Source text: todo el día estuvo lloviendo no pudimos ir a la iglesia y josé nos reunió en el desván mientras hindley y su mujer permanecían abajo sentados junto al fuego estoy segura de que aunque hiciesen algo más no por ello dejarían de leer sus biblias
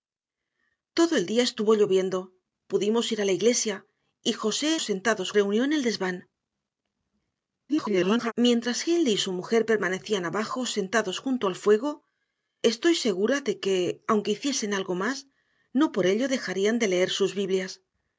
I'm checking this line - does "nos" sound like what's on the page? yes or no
no